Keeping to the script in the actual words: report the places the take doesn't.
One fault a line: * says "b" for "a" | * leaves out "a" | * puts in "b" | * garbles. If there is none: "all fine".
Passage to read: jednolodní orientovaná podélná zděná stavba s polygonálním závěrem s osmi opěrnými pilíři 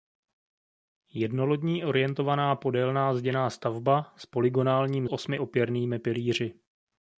* leaves out "závěrem s"